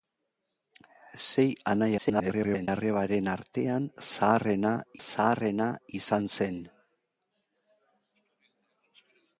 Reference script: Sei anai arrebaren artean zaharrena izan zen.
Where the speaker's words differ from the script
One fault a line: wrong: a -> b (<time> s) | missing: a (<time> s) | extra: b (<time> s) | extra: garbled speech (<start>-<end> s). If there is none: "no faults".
extra: garbled speech (2.0-2.7 s)
extra: zaharrena (5.1 s)